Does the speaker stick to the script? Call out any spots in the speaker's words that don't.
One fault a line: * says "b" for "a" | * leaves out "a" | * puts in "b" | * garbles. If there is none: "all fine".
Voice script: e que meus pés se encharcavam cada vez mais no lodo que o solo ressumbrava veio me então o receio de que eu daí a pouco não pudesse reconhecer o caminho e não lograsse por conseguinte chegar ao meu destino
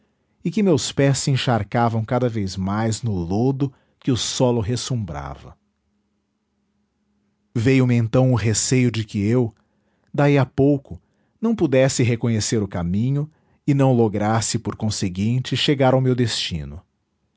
all fine